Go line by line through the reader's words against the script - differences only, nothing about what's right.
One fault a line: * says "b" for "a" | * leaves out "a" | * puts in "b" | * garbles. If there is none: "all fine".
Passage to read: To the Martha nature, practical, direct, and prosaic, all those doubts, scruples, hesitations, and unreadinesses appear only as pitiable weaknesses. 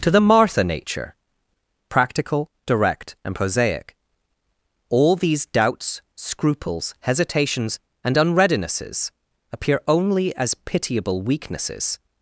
* says "these" for "those"